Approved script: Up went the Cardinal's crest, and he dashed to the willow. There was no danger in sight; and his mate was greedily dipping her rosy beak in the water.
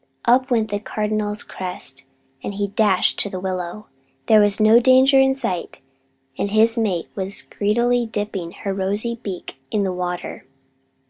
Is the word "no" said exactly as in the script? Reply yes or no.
yes